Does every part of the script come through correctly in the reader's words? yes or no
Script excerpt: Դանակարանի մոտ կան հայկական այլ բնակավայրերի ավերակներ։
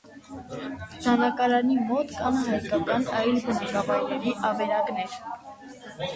yes